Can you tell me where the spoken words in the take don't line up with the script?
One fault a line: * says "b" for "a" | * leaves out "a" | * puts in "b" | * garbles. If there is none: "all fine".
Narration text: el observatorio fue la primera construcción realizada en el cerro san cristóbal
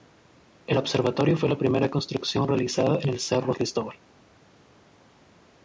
* leaves out "san"